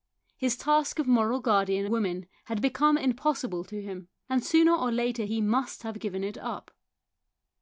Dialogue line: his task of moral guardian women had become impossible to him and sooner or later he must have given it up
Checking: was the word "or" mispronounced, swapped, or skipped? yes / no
no